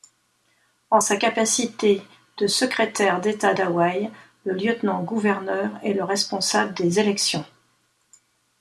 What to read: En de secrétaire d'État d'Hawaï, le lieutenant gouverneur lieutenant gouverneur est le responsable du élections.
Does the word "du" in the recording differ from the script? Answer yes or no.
yes